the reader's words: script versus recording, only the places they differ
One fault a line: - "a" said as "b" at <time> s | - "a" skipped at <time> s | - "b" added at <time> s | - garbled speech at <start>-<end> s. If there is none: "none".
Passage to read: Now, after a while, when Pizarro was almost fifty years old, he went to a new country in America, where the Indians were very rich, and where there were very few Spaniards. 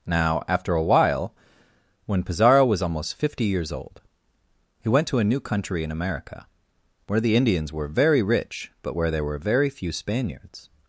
- "and" said as "but" at 8.8 s